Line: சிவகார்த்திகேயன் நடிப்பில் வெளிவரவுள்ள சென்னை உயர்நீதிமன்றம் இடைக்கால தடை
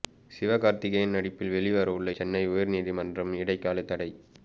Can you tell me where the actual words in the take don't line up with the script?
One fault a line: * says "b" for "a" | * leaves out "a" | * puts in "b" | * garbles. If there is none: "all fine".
all fine